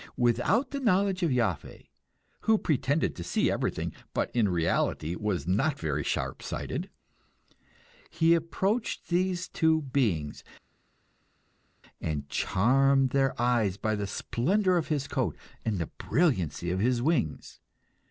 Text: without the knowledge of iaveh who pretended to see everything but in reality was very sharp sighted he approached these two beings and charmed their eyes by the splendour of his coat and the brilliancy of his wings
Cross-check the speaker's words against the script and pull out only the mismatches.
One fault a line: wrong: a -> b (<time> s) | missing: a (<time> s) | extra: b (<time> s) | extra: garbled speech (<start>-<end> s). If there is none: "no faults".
extra: not (5.5 s)